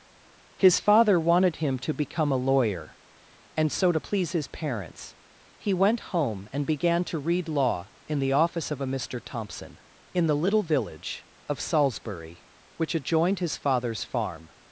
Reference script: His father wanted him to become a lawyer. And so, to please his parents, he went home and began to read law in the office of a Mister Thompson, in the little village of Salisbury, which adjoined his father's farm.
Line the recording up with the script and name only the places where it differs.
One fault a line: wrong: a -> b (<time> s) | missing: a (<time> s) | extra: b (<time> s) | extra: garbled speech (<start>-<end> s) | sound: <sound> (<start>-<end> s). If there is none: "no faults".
no faults